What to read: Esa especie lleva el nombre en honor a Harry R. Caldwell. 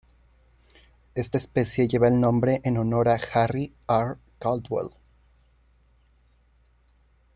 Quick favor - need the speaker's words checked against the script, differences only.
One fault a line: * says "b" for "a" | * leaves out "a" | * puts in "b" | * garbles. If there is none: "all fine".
* says "Esta" for "Esa"